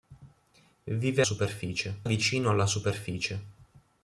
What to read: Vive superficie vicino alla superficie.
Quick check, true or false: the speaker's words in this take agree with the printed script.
true